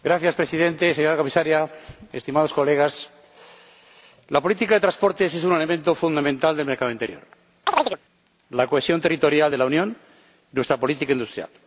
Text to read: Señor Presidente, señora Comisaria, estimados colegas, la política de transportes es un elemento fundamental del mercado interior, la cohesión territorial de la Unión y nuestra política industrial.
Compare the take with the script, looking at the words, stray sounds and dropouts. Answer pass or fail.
fail